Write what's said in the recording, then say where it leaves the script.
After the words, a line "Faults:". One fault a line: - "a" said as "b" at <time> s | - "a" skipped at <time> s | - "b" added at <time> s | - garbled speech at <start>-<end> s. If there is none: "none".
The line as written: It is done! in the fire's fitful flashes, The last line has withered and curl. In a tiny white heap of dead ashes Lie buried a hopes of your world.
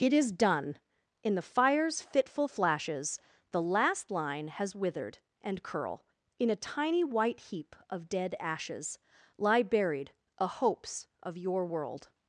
It is done! in the fire's fitful flashes, The last line has withered and curl. In a tiny white heap of dead ashes Lie buried a hopes of your world.
Faults:
none